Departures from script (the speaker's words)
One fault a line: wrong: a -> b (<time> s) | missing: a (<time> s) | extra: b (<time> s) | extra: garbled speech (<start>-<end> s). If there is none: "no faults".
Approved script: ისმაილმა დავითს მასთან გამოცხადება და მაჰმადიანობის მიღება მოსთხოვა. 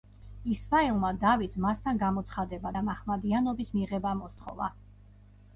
no faults